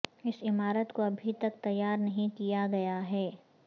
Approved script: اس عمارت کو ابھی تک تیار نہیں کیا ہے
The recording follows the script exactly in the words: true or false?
false